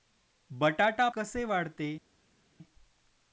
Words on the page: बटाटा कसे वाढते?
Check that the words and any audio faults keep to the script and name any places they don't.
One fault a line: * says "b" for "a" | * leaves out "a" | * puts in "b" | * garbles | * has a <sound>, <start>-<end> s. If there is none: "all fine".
all fine